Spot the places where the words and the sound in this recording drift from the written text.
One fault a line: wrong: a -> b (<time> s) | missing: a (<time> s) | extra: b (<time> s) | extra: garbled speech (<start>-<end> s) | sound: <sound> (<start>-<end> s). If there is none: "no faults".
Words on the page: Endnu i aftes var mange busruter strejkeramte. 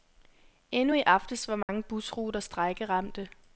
sound: dropout (1.6-1.7 s)